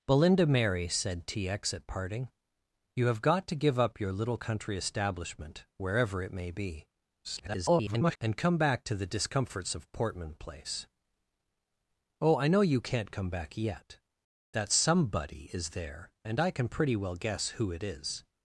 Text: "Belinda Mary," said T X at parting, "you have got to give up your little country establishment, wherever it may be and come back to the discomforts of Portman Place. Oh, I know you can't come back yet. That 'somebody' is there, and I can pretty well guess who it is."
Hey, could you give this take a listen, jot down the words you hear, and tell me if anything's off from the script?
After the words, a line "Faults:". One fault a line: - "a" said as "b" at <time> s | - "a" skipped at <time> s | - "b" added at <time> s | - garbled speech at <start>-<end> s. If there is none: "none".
"Belinda Mary," said T X at parting, "you have got to give up your little country establishment, wherever it may be [garbled] and come back to the discomforts of Portman Place. Oh, I know you can't come back yet. That 'somebody' is there, and I can pretty well guess who it is."
Faults:
- garbled speech at 7.2-8.2 s